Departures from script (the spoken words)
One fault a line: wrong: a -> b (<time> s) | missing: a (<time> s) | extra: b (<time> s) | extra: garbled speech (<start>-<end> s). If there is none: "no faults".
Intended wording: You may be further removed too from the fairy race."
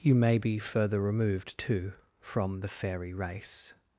no faults